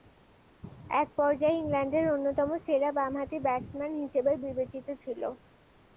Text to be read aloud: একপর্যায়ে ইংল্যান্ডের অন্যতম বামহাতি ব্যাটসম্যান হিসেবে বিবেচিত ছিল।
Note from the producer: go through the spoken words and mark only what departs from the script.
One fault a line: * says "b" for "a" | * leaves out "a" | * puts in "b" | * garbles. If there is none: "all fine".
* puts in "সেরা"